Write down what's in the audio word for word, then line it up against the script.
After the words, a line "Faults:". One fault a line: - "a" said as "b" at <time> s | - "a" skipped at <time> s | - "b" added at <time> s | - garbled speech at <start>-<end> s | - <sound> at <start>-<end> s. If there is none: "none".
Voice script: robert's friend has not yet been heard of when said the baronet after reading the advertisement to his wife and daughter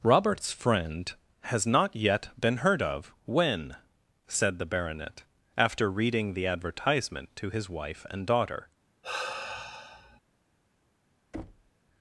robert's friend has not yet been heard of when said the baronet after reading the advertisement to his wife and daughter
Faults:
- sigh at 9.0-10.2 s
- thud at 11.3-11.7 s